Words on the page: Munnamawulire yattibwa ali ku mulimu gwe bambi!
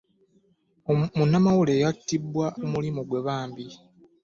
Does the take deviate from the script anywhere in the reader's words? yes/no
yes